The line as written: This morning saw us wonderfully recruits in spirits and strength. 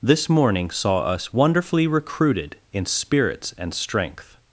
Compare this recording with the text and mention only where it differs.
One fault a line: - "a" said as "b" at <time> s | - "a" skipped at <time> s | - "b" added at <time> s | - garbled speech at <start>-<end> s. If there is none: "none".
- "recruits" said as "recruited" at 1.9 s